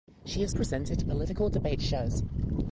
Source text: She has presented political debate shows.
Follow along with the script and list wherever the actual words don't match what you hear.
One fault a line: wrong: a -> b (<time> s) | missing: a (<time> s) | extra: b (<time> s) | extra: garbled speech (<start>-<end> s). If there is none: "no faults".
no faults